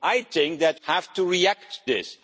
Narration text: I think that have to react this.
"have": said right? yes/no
yes